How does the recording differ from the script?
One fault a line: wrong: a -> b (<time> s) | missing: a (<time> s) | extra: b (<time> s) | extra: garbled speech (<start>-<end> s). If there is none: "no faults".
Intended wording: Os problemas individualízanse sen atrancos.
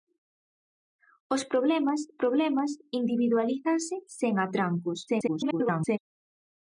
extra: problemas (2.2 s)
extra: garbled speech (5.1-6.0 s)